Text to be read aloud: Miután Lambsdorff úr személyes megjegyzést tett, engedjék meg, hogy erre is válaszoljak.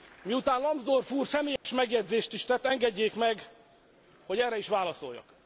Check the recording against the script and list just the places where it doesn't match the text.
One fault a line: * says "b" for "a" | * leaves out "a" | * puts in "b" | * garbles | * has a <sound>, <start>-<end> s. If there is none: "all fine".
* has a dropout, 1.6-1.6 s
* puts in "is"